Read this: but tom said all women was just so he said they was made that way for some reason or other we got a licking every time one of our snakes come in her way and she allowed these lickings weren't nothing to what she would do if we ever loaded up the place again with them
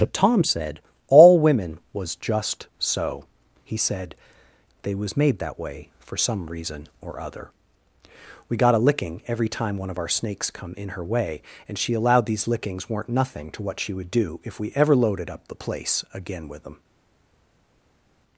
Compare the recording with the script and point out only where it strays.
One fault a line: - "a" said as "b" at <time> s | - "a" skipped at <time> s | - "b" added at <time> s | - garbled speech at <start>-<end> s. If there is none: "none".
none